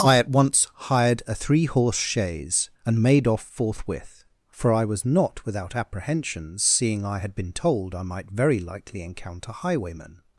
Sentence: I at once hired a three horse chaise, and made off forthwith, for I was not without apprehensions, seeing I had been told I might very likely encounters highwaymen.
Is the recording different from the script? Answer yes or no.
yes